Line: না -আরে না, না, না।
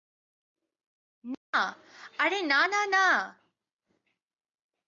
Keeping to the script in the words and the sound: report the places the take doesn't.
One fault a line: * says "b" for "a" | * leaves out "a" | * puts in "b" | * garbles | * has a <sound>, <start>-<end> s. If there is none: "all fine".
all fine